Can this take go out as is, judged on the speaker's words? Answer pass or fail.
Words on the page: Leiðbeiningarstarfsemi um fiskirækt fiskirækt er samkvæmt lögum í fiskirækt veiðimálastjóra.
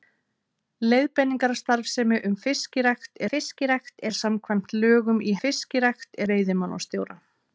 pass